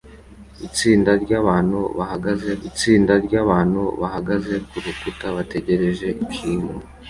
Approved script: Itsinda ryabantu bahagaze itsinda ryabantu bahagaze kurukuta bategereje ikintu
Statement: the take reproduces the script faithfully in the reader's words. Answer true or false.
true